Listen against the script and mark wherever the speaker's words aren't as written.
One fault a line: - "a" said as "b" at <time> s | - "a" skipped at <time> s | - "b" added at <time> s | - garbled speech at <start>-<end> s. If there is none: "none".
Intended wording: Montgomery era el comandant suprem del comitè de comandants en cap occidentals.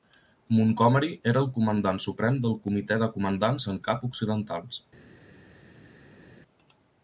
none